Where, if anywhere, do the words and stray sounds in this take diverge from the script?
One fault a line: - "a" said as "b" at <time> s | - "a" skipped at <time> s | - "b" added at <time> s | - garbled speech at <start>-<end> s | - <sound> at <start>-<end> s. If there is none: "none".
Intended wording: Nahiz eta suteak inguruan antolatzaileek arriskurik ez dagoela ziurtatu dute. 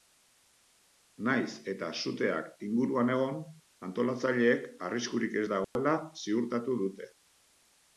- "egon" added at 3.2 s
- dropout at 5.6-5.8 s